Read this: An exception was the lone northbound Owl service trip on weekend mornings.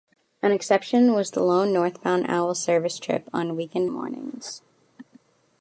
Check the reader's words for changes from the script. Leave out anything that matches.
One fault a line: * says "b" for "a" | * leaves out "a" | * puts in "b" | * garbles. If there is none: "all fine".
all fine